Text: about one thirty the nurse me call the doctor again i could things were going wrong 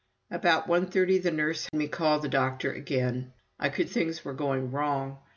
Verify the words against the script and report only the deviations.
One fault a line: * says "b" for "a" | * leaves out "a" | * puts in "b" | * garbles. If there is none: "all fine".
all fine